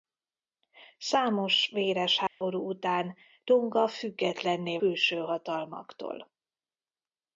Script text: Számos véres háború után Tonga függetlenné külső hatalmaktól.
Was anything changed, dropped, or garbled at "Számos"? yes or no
no